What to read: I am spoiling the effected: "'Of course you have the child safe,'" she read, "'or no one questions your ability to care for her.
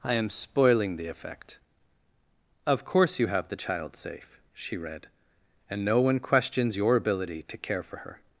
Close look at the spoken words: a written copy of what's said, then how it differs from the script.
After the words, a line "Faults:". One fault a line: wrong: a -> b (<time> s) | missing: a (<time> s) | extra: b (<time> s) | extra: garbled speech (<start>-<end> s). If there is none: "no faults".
I am spoiling the effect: "'Of course you have the child safe,'" she read, "'and no one questions your ability to care for her.
Faults:
wrong: effected -> effect (1.1 s)
wrong: or -> and (5.7 s)